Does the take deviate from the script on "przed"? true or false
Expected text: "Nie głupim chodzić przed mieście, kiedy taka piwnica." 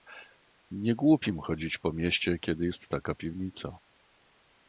true